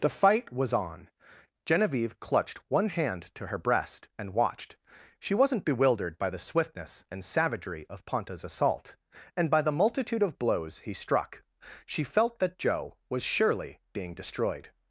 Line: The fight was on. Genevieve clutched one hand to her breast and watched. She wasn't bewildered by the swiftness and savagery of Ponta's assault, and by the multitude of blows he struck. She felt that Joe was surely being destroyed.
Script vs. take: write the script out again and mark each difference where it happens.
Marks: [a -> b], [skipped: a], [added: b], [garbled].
The fight was on. Genevieve clutched one hand to her breast and watched. She wasn't bewildered by the swiftness and savagery of Ponta's assault, and by the multitude of blows he struck. She felt that Joe was surely being destroyed.